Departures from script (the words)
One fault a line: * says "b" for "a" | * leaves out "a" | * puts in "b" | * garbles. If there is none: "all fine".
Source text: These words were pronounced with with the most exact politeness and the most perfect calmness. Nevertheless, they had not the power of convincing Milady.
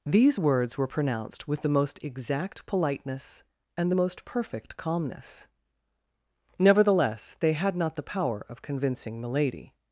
* leaves out "with"